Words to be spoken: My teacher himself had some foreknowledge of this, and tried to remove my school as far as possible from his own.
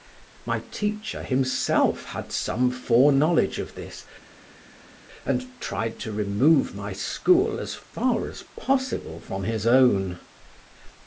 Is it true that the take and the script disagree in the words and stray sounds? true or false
false